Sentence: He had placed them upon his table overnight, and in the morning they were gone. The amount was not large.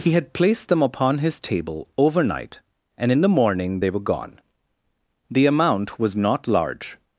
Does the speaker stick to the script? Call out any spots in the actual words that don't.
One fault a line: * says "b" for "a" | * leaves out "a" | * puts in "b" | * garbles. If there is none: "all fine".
all fine